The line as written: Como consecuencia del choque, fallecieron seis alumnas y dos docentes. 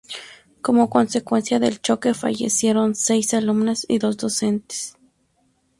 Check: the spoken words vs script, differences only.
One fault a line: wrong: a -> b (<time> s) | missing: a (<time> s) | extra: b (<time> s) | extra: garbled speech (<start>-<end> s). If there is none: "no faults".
no faults